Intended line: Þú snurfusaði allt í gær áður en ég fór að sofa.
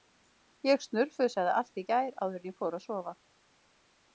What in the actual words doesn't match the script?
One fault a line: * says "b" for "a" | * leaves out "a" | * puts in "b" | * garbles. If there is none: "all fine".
* says "Ég" for "Þú"